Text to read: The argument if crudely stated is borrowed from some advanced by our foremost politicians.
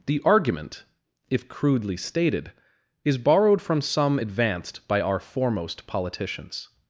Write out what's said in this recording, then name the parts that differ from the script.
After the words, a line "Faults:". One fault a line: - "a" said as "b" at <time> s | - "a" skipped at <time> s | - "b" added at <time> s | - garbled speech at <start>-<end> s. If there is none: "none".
The argument if crudely stated is borrowed from some advanced by our foremost politicians.
Faults:
none